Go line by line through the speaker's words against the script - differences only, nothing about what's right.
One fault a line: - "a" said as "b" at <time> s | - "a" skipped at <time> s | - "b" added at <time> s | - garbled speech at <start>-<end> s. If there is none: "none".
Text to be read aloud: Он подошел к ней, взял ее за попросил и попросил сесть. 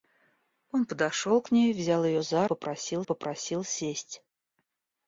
none